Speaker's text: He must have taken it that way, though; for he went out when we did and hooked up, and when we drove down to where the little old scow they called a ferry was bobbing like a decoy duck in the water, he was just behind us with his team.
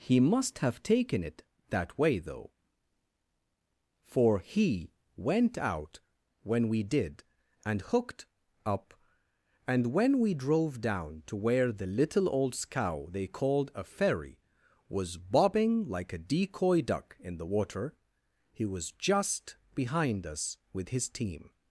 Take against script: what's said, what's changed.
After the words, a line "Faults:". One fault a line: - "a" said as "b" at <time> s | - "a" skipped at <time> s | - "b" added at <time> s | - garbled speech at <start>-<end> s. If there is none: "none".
He must have taken it that way, though; for he went out when we did and hooked up, and when we drove down to where the little old scow they called a ferry was bobbing like a decoy duck in the water, he was just behind us with his team.
Faults:
none